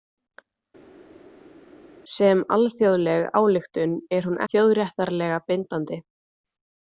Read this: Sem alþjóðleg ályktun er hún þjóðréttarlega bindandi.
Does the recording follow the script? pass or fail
pass